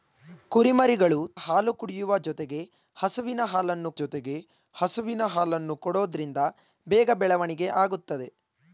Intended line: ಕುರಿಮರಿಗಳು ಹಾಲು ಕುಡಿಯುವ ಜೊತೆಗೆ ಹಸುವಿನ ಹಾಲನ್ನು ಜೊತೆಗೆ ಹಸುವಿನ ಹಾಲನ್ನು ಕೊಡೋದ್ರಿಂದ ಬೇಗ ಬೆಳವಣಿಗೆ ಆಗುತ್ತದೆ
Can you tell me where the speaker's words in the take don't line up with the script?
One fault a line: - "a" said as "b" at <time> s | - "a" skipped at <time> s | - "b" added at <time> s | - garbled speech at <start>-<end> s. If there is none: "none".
none